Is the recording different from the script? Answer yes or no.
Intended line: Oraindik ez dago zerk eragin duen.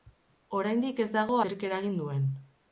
no